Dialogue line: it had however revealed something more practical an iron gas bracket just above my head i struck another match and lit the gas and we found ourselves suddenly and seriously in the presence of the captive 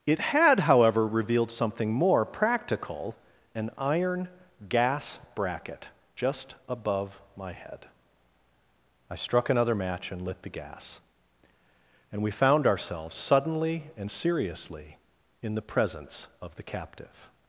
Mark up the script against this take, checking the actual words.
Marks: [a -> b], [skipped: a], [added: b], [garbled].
it had however revealed something more practical an iron gas bracket just above my head i struck another match and lit the gas and we found ourselves suddenly and seriously in the presence of the captive